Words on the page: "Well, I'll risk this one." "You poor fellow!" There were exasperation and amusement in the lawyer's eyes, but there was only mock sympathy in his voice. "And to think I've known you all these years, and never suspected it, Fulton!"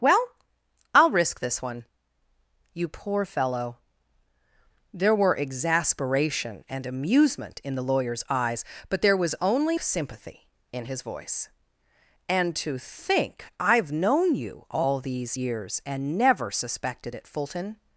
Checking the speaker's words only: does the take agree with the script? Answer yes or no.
no